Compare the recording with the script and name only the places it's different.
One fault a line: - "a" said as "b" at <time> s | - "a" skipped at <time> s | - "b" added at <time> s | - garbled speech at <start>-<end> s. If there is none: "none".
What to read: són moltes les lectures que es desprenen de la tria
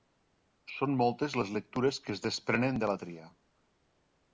none